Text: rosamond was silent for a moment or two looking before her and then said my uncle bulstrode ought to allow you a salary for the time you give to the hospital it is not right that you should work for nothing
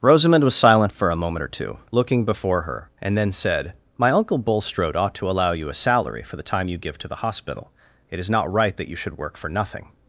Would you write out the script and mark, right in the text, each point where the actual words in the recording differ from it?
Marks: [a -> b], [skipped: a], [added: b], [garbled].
rosamond was silent for a moment or two looking before her and then said my uncle bulstrode ought to allow you a salary for the time you give to the hospital it is not right that you should work for nothing